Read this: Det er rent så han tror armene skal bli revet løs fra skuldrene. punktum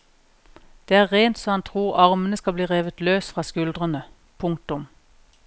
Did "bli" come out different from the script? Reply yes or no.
no